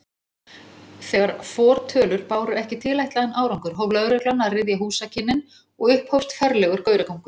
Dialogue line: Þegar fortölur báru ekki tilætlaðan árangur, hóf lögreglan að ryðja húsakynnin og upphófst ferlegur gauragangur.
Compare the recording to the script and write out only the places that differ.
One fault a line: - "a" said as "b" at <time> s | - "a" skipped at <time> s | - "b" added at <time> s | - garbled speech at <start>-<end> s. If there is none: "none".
none